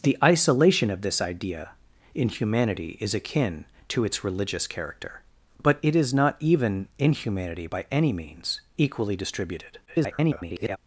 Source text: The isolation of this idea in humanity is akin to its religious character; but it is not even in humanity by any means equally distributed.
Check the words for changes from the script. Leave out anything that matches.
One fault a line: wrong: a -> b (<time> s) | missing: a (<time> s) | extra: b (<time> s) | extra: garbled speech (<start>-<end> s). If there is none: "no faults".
extra: garbled speech (9.9-10.8 s)